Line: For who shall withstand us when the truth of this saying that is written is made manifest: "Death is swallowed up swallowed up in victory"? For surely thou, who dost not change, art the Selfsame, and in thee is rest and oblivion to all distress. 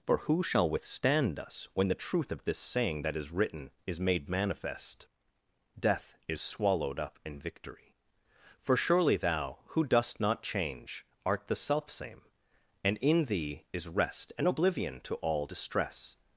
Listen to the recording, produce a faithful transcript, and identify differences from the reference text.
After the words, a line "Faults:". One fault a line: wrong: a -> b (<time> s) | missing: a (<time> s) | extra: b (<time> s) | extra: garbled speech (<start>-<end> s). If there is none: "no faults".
For who shall withstand us when the truth of this saying that is written is made manifest: "Death is swallowed up in victory"? For surely thou, who dost not change, art the Selfsame, and in thee is rest and oblivion to all distress.
Faults:
missing: swallowed up (7.2 s)